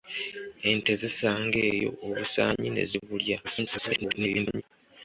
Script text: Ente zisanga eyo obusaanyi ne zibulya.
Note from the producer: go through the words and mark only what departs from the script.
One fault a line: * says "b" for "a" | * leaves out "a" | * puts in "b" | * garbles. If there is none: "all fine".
* garbles